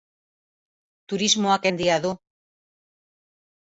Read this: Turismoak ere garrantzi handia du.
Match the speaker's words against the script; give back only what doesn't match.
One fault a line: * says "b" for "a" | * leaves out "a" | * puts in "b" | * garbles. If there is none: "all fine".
* leaves out "ere garrantzi"